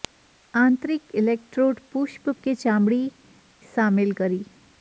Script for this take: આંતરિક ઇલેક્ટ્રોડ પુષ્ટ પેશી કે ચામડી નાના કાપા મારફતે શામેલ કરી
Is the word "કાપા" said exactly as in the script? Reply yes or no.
no